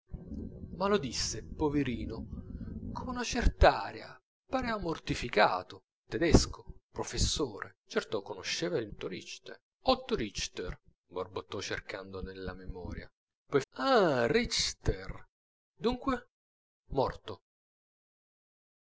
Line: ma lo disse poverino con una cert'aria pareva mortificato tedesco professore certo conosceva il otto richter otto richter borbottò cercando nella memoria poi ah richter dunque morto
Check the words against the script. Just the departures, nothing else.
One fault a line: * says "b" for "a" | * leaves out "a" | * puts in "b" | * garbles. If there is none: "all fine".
all fine